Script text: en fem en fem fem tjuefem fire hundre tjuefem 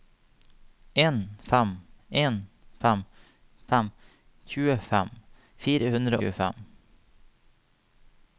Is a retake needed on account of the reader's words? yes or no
no